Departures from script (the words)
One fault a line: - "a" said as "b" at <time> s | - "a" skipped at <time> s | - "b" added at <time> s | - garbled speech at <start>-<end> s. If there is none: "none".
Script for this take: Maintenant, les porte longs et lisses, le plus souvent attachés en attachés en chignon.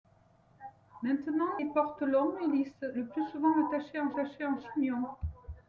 none